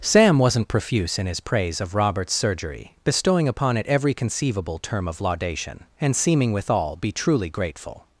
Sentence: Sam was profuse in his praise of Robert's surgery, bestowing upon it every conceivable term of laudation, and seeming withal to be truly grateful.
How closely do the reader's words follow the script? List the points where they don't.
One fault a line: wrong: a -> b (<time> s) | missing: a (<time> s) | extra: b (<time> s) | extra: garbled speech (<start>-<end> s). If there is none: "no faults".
wrong: was -> wasn't (0.4 s)
missing: to (7.0 s)